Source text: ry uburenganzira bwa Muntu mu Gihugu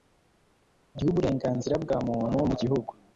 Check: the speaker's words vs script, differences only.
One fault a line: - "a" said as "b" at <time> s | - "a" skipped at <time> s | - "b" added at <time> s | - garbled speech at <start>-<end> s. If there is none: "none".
none